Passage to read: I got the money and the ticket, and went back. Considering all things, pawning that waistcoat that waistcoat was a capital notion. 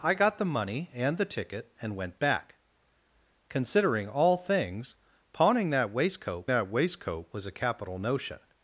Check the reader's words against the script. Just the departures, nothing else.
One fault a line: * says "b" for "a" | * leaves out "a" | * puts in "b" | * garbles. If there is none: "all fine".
all fine